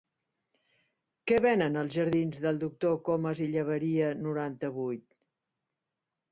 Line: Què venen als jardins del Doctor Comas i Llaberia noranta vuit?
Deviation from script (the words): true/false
false